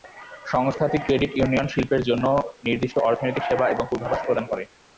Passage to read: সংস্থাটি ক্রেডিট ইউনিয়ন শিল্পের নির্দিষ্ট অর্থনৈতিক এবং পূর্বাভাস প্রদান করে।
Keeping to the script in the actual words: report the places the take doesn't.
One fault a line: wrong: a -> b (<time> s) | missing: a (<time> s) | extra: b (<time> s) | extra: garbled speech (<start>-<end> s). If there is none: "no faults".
extra: জন্য (2.1 s)
extra: সেবা (3.4 s)